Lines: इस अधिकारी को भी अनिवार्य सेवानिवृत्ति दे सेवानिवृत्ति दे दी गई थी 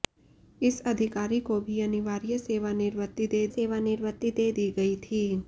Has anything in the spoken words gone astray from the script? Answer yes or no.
no